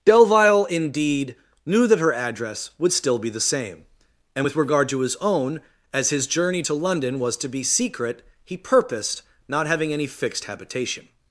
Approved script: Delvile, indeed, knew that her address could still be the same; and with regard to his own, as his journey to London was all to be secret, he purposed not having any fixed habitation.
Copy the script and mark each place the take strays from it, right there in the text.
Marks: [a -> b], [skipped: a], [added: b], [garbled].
Delvile, indeed, knew that her address [could -> would] still be the same; and with regard to his own, as his journey to London was [skipped: all] to be secret, he purposed not having any fixed habitation.